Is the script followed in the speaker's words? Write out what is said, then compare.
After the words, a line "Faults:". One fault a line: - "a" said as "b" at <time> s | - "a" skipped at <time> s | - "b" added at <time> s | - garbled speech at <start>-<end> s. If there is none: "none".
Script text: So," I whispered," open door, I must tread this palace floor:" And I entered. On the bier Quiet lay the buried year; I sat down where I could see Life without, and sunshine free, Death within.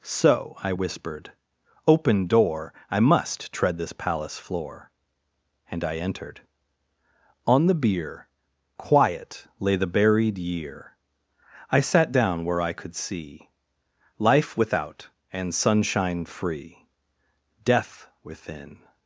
So," I whispered," open door, I must tread this palace floor:" And I entered. On the bier Quiet lay the buried year; I sat down where I could see Life without, and sunshine free, Death within.
Faults:
none